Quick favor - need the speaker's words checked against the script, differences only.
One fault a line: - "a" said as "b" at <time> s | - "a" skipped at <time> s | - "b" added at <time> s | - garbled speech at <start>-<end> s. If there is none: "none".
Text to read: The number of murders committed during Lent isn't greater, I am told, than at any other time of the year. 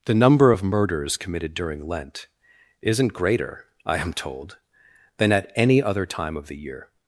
none